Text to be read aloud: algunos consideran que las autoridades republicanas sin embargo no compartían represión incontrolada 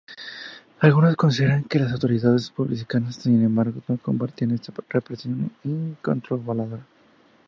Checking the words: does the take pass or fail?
fail